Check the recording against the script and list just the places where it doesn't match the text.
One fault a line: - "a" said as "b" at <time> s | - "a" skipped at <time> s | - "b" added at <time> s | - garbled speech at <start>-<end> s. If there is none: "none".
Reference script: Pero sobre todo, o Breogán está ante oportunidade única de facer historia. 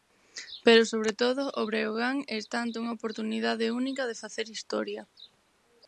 - "unha" added at 2.8 s